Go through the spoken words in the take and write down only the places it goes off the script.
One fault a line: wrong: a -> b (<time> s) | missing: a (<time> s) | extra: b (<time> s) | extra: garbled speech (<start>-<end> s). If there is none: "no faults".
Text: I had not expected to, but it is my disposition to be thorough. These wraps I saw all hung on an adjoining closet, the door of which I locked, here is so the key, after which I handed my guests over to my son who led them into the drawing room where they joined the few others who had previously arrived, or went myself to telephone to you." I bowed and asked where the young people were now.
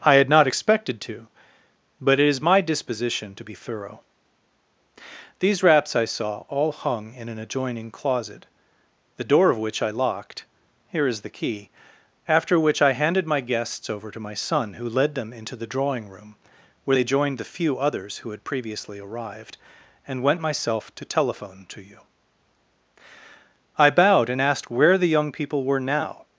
wrong: on -> in (7.1 s)
missing: so (11.2 s)
wrong: or -> and (20.1 s)